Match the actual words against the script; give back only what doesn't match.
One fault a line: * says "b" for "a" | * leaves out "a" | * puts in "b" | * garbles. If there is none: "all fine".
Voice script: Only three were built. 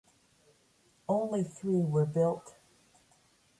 all fine